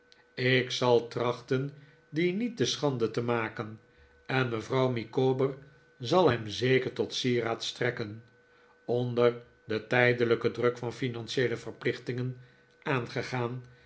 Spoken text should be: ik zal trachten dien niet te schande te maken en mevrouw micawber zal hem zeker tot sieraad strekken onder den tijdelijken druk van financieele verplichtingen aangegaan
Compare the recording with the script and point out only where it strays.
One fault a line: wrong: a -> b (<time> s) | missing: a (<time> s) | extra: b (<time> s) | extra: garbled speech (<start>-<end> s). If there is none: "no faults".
no faults